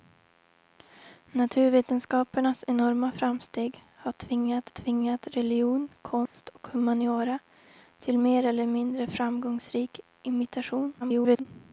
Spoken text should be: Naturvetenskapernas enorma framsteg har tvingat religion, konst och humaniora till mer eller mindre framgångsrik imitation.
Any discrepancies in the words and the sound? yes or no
yes